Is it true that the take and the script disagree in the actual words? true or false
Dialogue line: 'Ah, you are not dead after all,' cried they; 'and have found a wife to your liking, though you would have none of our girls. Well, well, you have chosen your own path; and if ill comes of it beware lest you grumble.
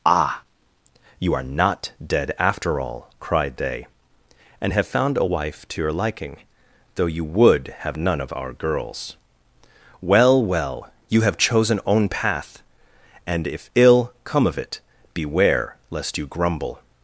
true